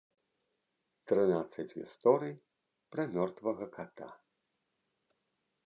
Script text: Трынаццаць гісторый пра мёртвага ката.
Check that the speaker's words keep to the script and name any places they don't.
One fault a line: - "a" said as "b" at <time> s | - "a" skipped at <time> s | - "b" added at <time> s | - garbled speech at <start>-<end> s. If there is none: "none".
none